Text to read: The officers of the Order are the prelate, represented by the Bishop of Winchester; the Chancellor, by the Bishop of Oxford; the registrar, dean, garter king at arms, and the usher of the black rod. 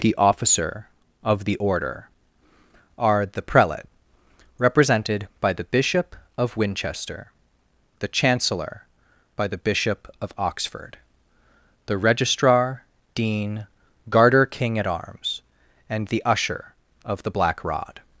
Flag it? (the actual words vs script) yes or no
yes